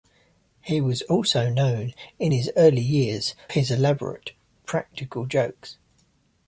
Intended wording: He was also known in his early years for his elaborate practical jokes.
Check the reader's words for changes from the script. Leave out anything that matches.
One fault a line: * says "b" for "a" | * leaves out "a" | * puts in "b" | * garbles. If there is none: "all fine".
* leaves out "for"